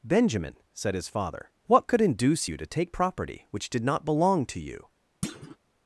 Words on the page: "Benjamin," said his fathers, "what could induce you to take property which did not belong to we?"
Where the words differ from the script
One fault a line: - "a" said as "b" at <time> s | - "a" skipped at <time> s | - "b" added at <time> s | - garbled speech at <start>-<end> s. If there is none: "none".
- "fathers" said as "father" at 1.1 s
- "we" said as "you" at 4.6 s